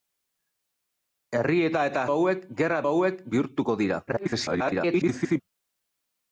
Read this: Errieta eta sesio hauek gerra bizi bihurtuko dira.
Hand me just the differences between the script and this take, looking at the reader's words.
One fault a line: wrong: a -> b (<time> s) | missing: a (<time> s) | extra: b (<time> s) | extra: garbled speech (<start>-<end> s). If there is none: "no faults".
missing: sesio (2.0 s)
wrong: bizi -> hauek (2.9 s)
extra: garbled speech (4.1-5.4 s)